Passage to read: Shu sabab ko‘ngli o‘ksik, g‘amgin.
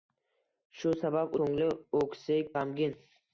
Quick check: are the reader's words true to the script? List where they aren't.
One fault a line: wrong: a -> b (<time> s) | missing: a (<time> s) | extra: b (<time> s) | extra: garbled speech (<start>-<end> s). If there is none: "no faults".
no faults